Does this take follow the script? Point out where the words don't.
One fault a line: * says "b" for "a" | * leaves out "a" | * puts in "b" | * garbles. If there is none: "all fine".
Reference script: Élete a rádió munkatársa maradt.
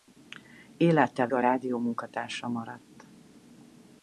all fine